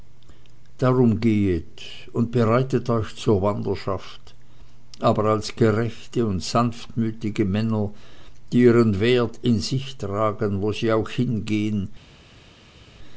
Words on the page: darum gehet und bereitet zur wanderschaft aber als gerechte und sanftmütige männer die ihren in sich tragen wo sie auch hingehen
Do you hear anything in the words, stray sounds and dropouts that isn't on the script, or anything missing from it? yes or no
yes